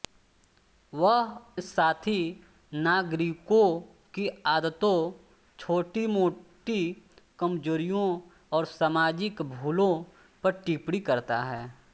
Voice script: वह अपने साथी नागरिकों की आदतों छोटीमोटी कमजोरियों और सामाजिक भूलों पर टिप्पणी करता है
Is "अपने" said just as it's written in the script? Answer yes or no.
no